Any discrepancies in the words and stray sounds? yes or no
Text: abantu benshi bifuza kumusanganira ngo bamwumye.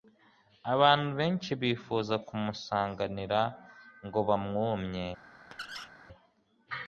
yes